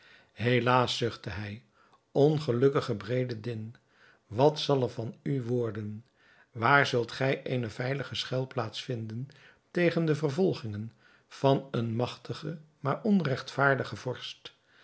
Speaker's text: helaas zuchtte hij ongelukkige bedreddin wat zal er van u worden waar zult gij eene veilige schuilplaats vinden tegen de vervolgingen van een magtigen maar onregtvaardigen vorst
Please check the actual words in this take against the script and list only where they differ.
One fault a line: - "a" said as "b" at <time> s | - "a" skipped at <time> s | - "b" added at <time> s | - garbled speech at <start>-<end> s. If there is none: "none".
none